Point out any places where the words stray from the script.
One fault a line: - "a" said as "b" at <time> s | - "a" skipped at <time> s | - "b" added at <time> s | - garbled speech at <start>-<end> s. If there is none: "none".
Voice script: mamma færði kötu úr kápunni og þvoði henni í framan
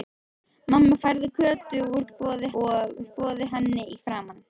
- "kápunni" said as "þvoði" at 2.1 s